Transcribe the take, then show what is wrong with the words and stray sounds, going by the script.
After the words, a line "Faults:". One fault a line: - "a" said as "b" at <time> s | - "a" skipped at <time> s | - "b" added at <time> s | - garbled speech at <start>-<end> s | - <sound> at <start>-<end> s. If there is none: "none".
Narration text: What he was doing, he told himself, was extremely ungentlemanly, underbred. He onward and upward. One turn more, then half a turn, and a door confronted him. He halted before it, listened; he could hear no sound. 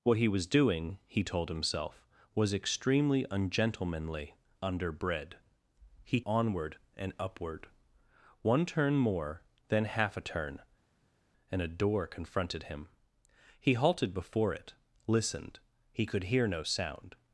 What he was doing, he told himself, was extremely ungentlemanly, underbred. He onward and upward. One turn more, then half a turn, and a door confronted him. He halted before it, listened; he could hear no sound.
Faults:
none